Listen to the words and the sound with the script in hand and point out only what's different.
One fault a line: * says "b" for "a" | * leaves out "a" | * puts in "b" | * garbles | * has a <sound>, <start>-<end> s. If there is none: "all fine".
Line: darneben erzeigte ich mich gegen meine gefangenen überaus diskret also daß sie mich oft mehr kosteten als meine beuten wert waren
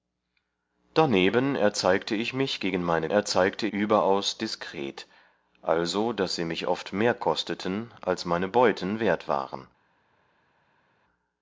* says "erzeigte" for "gefangenen"